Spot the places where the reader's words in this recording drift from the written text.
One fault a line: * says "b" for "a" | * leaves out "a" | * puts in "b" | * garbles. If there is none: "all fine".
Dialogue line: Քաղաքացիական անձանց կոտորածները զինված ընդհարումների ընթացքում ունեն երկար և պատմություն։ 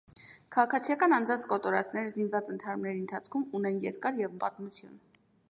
all fine